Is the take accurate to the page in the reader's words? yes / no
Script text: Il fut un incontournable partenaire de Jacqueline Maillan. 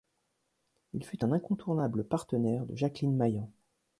yes